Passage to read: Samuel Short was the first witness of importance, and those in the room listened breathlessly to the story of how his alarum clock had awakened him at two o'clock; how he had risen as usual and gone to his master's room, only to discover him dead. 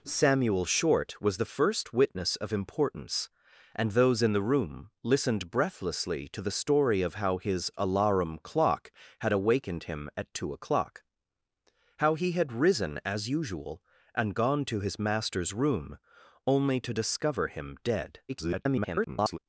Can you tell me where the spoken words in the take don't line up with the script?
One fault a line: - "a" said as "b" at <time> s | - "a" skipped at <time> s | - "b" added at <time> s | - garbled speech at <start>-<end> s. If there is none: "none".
- garbled speech at 18.3-19.4 s